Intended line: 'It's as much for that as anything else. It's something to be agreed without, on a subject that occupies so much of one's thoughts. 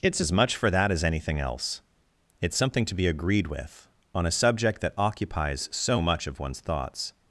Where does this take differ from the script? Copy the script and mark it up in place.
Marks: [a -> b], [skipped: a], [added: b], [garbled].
'It's as much for that as anything else. It's something to be agreed [without, -> with] on a subject that occupies so much of one's thoughts.